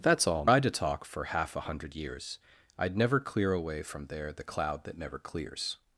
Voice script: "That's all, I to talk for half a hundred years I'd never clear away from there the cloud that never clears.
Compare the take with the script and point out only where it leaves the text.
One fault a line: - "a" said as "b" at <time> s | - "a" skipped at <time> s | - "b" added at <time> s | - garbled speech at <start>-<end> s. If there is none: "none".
none